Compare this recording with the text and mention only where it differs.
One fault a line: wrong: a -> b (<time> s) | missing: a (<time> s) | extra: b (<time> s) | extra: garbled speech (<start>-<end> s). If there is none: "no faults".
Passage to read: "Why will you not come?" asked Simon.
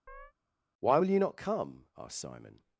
no faults